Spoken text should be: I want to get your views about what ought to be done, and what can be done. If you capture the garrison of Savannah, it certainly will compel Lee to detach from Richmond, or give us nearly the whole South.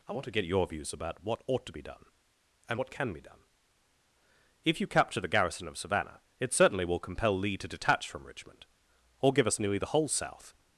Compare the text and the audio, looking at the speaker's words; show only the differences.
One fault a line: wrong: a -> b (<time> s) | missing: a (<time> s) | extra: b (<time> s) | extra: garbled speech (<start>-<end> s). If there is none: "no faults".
no faults